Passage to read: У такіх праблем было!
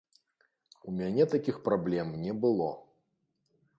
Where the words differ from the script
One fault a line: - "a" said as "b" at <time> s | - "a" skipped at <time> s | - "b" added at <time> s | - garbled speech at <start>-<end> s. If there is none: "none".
- "мяне" added at 1.0 s
- "не" added at 2.2 s